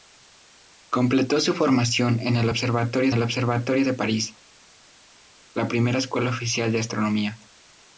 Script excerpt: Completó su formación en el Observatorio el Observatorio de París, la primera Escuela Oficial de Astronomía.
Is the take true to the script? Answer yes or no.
yes